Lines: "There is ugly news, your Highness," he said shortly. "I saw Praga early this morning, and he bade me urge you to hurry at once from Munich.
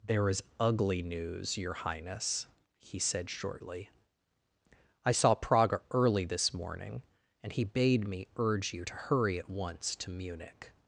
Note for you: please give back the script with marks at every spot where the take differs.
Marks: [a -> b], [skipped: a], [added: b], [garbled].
"There is ugly news, your Highness," he said shortly. "I saw Praga early this morning, and he bade me urge you to hurry at once [from -> to] Munich.